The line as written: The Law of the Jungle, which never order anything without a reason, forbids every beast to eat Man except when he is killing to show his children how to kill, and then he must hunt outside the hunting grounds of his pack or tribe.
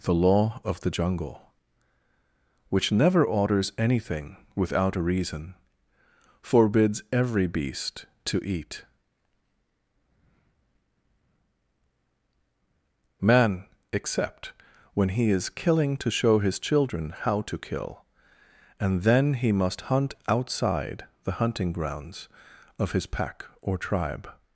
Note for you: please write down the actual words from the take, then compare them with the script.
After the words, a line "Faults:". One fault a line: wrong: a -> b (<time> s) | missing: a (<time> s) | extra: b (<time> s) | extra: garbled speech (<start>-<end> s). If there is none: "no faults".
The Law of the Jungle, which never orders anything without a reason, forbids every beast to eat Man except when he is killing to show his children how to kill, and then he must hunt outside the hunting grounds of his pack or tribe.
Faults:
wrong: order -> orders (3.2 s)